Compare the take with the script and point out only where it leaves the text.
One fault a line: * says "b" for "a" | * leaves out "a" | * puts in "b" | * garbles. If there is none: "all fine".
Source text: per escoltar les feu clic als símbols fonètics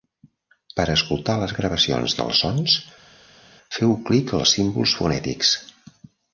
* puts in "gravacions dels sons"